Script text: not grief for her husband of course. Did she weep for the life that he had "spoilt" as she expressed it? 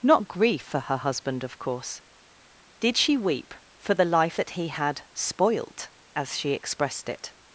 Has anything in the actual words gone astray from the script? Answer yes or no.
no